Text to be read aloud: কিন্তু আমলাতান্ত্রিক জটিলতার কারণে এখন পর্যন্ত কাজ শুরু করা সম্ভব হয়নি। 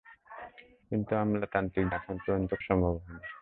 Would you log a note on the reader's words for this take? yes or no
yes